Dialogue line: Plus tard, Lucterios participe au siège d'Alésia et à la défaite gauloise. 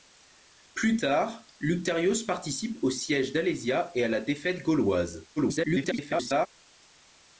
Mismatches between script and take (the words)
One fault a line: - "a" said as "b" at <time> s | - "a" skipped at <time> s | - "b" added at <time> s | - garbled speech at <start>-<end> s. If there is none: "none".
- garbled speech at 5.4-6.5 s